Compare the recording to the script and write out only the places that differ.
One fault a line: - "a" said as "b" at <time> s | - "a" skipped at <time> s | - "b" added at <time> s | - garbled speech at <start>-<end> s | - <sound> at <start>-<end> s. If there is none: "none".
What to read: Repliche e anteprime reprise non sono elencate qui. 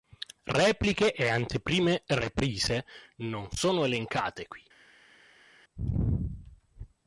none